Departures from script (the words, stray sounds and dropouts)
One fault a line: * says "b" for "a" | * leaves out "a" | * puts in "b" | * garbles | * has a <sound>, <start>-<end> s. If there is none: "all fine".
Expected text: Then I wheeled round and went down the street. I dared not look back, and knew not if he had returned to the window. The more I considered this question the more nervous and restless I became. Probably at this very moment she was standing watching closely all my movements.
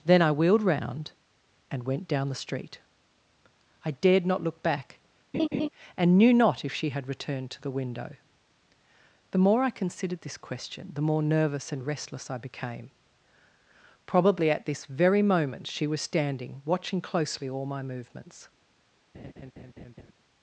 * has a laugh, 5.3-5.7 s
* says "she" for "he"
* has a laugh, 19.1-20.1 s